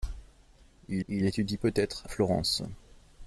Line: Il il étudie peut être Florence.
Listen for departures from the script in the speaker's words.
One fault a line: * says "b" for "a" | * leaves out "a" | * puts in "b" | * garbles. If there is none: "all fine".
all fine